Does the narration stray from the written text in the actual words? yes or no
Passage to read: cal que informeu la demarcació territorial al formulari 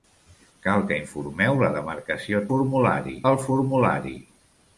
yes